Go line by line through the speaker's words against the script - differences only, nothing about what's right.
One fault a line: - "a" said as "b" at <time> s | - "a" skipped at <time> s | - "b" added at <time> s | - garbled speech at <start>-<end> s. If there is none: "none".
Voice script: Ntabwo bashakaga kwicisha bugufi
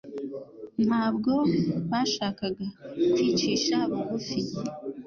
none